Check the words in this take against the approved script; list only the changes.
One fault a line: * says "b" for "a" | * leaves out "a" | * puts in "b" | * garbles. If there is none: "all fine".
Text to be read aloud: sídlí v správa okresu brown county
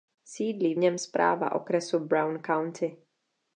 * puts in "něm"